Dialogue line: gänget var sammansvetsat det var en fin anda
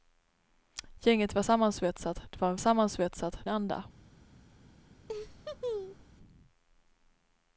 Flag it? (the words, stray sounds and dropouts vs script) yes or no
yes